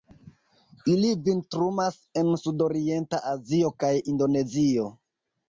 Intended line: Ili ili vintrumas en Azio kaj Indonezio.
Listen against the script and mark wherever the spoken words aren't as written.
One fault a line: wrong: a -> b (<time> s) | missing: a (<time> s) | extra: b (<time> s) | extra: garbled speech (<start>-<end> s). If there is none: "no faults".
missing: ili (1.1 s)
extra: sudorienta (2.5 s)